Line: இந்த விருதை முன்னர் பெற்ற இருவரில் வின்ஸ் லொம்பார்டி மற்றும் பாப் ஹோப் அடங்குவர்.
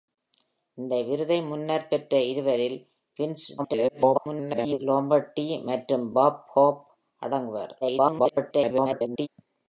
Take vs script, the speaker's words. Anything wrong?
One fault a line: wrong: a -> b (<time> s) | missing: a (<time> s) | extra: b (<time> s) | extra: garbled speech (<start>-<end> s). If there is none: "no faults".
extra: garbled speech (3.6-4.8 s)
extra: garbled speech (7.8-9.3 s)